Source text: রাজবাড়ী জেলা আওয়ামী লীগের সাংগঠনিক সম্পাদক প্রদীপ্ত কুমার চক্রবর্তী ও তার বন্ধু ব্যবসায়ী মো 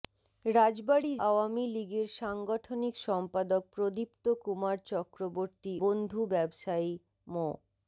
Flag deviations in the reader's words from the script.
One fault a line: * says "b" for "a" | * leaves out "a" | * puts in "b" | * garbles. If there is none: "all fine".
* leaves out "জেলা"
* leaves out "ও তার"